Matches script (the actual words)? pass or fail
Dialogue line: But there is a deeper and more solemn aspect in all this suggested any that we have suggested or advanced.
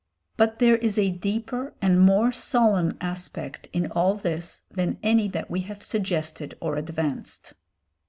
fail